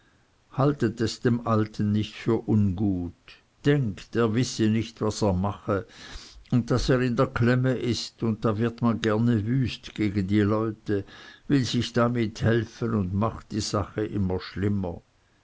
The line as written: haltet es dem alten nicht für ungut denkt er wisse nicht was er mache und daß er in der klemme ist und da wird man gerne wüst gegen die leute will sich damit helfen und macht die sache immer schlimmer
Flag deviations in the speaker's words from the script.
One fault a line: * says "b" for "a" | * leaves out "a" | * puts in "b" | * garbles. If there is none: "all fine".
all fine